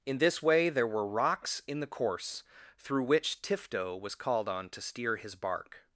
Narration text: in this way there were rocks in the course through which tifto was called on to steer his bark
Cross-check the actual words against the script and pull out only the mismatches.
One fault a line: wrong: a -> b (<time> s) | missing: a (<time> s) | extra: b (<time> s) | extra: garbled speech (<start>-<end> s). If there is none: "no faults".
no faults